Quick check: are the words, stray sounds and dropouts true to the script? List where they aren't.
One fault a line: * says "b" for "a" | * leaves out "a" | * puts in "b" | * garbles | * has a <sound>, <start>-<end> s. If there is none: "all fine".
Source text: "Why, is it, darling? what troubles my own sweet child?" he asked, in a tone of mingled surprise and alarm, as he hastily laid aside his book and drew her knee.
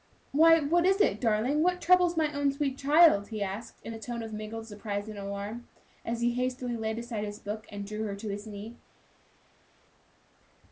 * puts in "what"
* puts in "to his"